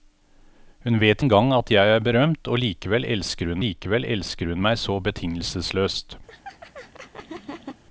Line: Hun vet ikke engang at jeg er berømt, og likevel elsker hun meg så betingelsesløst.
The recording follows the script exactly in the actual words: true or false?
false